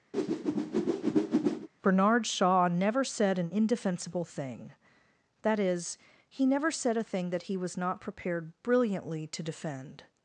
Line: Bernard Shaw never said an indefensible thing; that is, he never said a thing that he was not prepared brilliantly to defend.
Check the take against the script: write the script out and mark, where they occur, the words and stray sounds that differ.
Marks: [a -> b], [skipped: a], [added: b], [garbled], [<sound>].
[whoosh] Bernard Shaw never said an indefensible thing; that is, he never said a thing that he was not prepared brilliantly to defend.